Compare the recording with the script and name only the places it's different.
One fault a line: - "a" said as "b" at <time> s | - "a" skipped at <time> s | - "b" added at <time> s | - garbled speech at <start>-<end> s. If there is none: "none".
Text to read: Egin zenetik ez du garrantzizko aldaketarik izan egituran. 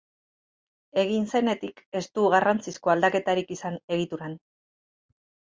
none